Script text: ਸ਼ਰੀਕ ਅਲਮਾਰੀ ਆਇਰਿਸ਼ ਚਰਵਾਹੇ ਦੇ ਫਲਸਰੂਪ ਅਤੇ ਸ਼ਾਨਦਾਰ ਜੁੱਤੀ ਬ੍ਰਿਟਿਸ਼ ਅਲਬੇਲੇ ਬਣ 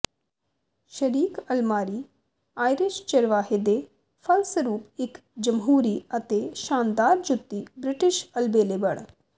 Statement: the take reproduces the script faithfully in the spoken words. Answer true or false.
false